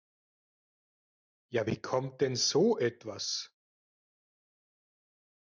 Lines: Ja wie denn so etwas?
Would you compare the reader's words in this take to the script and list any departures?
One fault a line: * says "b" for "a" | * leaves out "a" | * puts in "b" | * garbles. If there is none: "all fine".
* puts in "kommt"